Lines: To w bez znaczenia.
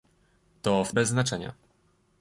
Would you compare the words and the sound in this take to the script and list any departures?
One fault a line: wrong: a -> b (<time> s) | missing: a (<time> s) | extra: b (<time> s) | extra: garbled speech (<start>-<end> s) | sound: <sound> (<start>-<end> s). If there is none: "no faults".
no faults